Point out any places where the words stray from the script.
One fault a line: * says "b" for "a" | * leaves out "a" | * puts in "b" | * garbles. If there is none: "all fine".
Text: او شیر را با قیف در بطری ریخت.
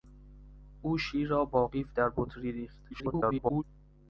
* garbles